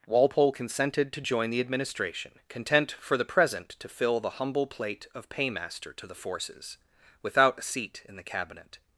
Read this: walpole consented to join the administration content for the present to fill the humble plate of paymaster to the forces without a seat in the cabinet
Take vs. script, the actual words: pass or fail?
pass